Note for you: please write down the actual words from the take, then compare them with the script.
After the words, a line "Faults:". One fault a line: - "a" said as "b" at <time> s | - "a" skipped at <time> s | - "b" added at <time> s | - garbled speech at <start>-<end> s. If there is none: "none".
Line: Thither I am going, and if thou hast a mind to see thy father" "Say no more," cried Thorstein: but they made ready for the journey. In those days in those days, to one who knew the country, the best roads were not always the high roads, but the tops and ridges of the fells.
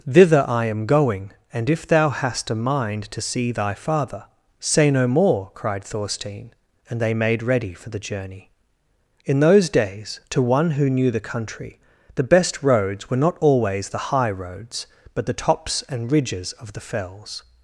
Thither I am going, and if thou hast a mind to see thy father" "Say no more," cried Thorstein: and they made ready for the journey. In those days, to one who knew the country, the best roads were not always the high roads, but the tops and ridges of the fells.
Faults:
- "but" said as "and" at 6.9 s
- "in those days" skipped at 10.2 s